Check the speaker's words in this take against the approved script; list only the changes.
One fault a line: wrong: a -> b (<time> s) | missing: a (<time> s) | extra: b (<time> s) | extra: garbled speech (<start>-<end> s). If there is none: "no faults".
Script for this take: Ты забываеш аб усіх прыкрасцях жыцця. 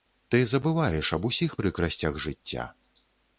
no faults